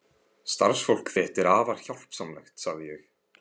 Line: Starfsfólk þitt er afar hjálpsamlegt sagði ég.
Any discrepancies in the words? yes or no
no